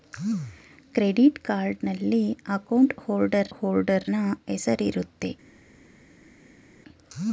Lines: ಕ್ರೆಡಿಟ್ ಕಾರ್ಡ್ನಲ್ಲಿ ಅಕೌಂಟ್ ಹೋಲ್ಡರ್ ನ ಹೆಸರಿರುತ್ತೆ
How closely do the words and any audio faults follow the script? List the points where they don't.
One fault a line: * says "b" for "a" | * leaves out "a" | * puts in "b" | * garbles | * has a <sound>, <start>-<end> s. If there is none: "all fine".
* puts in "ಹೋಲ್ಡರ್"